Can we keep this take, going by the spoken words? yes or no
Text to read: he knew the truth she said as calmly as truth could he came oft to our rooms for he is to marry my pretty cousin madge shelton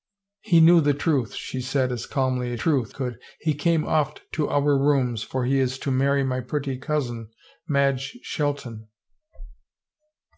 yes